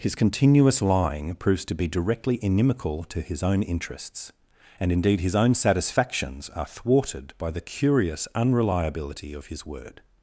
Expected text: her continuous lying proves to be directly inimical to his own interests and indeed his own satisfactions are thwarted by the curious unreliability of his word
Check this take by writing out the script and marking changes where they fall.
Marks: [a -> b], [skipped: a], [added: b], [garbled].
[her -> his] continuous lying proves to be directly inimical to his own interests and indeed his own satisfactions are thwarted by the curious unreliability of his word